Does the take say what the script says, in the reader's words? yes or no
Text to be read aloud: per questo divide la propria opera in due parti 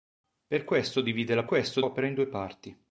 no